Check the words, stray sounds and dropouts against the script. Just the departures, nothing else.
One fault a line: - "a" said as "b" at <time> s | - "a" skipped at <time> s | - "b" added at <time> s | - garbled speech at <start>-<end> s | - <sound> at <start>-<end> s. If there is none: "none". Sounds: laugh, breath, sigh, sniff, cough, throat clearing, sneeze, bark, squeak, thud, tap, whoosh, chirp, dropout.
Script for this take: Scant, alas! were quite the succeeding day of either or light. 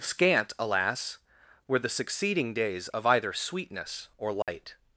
- "quite" skipped at 1.8 s
- "day" said as "days" at 2.5 s
- "sweetness" added at 3.3 s
- dropout at 4.4-4.5 s